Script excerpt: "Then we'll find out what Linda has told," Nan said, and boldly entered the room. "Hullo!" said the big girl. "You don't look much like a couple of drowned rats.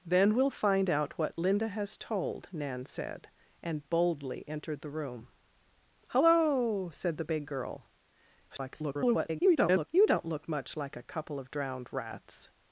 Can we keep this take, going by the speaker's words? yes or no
no